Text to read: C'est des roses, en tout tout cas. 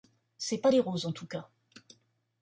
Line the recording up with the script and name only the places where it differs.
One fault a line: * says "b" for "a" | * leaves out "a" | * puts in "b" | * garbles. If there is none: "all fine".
* puts in "pas"
* leaves out "tout"